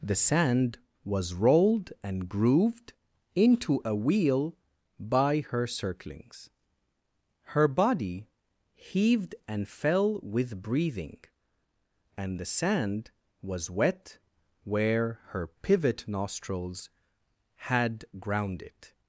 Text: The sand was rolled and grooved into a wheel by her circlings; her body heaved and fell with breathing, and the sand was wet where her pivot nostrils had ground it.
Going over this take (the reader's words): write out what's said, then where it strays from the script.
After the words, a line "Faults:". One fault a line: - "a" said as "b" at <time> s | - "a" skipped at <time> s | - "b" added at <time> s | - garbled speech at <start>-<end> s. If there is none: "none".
The sand was rolled and grooved into a wheel by her circlings; her body heaved and fell with breathing, and the sand was wet where her pivot nostrils had ground it.
Faults:
none